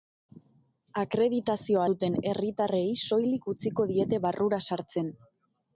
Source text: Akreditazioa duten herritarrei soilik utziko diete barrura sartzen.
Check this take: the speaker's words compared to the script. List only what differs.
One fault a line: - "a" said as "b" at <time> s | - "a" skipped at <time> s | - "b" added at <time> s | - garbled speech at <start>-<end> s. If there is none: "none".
none